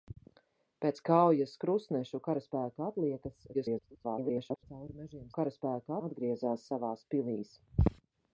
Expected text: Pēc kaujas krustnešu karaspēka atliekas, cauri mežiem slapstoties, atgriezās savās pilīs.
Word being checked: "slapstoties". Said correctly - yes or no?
no